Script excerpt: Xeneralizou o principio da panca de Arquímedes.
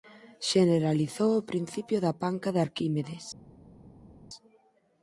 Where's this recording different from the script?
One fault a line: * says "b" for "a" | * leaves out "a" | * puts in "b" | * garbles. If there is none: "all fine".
all fine